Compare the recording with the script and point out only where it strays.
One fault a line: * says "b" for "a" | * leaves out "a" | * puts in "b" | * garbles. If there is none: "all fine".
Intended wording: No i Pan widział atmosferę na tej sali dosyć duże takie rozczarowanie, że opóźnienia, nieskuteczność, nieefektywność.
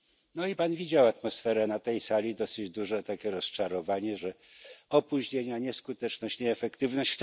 all fine